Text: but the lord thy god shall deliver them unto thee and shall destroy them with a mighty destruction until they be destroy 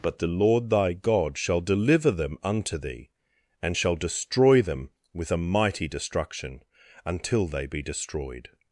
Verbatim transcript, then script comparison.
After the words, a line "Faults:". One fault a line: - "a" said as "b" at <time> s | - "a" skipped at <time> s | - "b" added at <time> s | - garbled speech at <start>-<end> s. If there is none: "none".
but the lord thy god shall deliver them unto thee and shall destroy them with a mighty destruction until they be destroyed
Faults:
- "destroy" said as "destroyed" at 7.8 s